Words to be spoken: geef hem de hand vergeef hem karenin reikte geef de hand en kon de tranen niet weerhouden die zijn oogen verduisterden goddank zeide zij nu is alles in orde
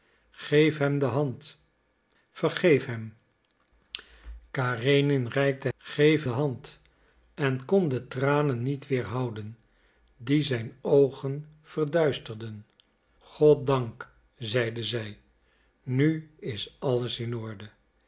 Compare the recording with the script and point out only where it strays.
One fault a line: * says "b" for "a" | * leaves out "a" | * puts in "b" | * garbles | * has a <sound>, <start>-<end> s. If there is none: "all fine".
all fine